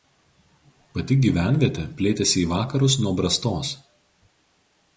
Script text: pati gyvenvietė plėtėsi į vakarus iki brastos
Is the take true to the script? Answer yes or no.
no